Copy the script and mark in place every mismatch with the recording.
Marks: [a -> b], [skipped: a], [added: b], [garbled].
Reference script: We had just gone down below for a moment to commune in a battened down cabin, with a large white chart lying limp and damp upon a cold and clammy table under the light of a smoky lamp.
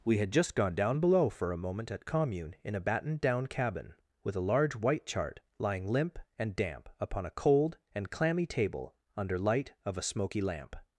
We had just gone down below for a moment [to -> at] commune in a battened down cabin, with a large white chart lying limp and damp upon a cold and clammy table under [skipped: the] light of a smoky lamp.